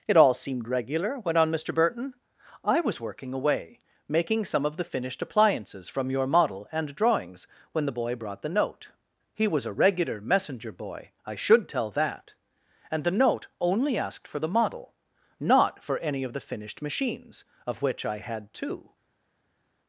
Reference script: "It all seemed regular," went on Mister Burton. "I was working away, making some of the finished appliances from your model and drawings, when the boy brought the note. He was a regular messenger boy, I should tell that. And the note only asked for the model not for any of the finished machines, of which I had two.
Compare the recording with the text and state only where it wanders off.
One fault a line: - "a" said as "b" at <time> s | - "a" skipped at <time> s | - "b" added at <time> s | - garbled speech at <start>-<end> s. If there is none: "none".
none